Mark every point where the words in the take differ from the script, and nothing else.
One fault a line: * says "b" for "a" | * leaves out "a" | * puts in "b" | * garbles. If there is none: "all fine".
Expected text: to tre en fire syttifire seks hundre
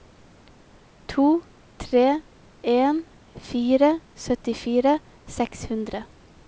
all fine